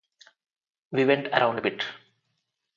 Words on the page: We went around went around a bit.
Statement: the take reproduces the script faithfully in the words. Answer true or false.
false